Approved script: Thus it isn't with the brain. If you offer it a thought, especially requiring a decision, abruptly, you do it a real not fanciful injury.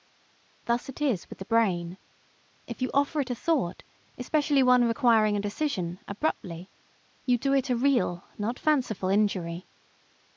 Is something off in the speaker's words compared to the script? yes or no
yes